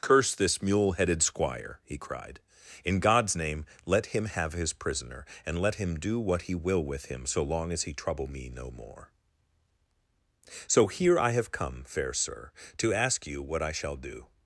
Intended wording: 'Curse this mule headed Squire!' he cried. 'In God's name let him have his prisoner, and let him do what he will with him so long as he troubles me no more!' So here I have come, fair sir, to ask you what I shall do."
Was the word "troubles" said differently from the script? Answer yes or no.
yes